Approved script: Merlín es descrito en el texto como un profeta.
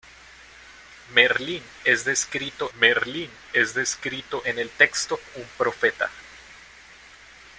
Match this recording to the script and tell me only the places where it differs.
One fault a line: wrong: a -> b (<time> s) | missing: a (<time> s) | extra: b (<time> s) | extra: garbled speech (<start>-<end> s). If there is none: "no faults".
extra: merlín es descrito (2.8 s)
missing: como (5.2 s)